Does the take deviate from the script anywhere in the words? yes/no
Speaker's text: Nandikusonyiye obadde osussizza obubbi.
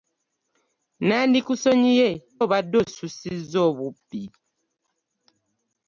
no